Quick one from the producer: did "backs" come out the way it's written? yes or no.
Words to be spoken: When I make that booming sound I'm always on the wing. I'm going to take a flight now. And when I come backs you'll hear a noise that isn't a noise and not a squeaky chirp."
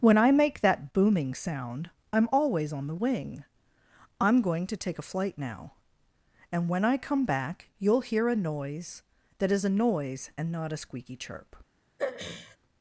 no